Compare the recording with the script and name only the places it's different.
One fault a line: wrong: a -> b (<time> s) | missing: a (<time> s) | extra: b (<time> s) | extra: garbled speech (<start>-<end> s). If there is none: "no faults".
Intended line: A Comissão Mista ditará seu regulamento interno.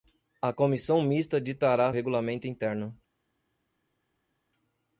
missing: seu (1.9 s)